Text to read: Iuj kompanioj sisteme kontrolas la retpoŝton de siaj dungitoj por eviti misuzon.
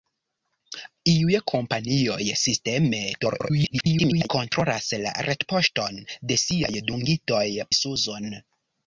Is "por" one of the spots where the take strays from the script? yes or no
yes